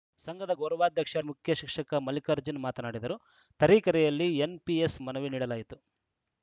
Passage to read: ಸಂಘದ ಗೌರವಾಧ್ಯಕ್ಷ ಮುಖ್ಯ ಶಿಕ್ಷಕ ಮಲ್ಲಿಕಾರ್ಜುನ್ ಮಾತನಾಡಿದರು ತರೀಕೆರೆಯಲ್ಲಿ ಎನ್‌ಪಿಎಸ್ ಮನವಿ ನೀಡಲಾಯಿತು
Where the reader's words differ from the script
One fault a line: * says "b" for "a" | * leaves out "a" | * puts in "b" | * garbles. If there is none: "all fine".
all fine